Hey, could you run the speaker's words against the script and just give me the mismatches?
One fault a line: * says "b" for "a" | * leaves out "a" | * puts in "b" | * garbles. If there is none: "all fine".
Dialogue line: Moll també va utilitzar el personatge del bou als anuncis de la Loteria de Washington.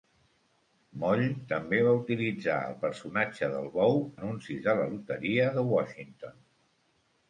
* leaves out "als"